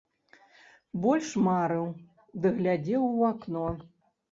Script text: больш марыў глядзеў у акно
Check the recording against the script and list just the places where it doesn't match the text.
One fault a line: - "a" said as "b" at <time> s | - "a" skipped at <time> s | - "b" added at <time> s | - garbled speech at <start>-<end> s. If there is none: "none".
- "ды" added at 2.4 s